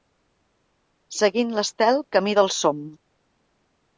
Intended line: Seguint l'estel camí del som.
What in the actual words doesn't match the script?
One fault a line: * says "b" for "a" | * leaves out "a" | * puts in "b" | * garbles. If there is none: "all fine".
all fine